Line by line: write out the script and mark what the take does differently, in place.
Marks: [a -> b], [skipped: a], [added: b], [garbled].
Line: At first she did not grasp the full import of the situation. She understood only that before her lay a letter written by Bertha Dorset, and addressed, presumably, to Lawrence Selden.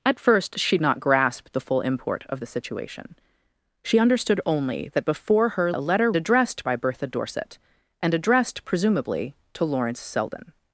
At first she [skipped: did] not grasp the full import of the situation. She understood only that before her [skipped: lay] a letter [written -> addressed] by Bertha Dorset, and addressed, presumably, to Lawrence Selden.